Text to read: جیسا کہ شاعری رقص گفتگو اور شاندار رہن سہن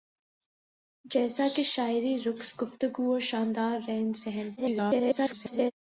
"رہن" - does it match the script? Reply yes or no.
yes